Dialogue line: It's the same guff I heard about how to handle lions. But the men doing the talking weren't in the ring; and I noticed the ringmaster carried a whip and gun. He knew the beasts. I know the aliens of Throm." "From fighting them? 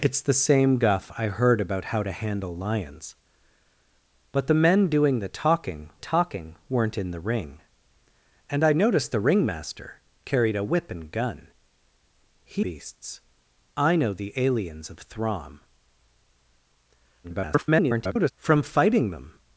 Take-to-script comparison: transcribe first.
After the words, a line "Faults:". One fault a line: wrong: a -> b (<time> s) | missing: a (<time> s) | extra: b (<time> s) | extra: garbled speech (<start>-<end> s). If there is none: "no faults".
It's the same guff I heard about how to handle lions. But the men doing the talking talking weren't in the ring; and I noticed the ringmaster carried a whip and gun. He beasts. I know the aliens of Throm." [garbled] "From fighting them?
Faults:
extra: talking (6.0 s)
missing: knew the (12.7 s)
extra: garbled speech (17.2-18.3 s)